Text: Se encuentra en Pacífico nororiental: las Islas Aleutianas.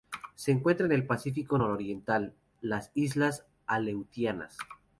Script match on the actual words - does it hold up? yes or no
no